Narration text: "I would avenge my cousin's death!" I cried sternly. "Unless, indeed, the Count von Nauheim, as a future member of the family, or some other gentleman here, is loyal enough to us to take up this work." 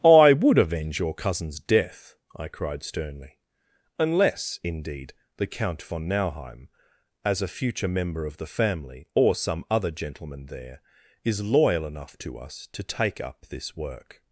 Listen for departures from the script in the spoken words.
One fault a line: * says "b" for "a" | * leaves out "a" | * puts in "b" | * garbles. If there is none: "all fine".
* says "your" for "my"
* says "there" for "here"